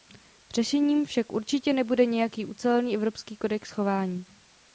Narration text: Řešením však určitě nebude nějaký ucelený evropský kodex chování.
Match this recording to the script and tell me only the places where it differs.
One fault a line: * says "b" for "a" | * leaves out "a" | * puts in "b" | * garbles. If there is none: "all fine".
all fine